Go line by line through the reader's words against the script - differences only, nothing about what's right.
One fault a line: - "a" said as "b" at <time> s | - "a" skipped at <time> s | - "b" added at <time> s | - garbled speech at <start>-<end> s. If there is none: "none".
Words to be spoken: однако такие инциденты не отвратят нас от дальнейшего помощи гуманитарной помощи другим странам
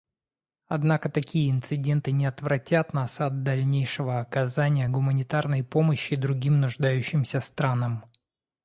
- "помощи" said as "оказания" at 4.2 s
- "нуждающимся" added at 6.6 s